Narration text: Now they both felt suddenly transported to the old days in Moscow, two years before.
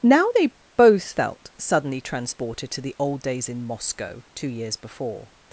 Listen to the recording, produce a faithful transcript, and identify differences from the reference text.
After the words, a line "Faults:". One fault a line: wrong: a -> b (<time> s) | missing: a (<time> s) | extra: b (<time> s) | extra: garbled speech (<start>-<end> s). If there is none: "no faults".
Now they both felt suddenly transported to the old days in Moscow, two years before.
Faults:
no faults